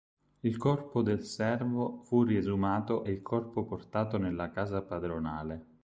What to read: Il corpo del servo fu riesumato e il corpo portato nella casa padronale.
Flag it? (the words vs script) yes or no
no